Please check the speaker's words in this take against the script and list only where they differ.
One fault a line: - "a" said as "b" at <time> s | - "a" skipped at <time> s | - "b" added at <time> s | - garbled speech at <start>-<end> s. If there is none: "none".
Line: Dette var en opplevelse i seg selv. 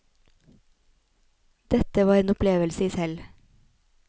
- "seg" skipped at 2.9 s